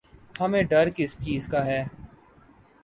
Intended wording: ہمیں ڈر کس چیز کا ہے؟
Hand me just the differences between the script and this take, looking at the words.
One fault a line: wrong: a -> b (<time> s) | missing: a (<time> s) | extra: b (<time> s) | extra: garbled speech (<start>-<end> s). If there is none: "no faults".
no faults